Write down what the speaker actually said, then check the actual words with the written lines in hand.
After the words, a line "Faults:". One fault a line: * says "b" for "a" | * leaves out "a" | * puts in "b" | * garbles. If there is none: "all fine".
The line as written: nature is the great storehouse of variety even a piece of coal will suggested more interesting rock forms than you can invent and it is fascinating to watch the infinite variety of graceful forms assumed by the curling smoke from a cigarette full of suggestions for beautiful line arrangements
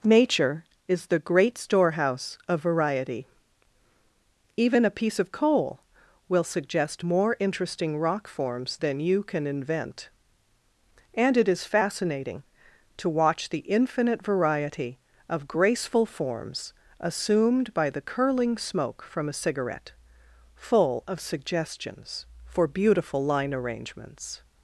nature is the great storehouse of variety even a piece of coal will suggest more interesting rock forms than you can invent and it is fascinating to watch the infinite variety of graceful forms assumed by the curling smoke from a cigarette full of suggestions for beautiful line arrangements
Faults:
* says "suggest" for "suggested"